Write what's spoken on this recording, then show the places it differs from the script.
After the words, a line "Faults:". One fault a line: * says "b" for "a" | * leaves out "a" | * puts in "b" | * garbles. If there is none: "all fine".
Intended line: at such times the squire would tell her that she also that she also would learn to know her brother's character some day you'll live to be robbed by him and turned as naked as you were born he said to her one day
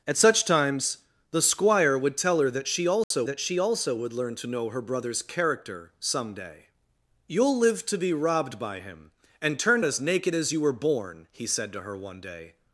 at such times the squire would tell her that she also that she also would learn to know her brother's character some day you'll live to be robbed by him and turned as naked as you were born he said to her one day
Faults:
all fine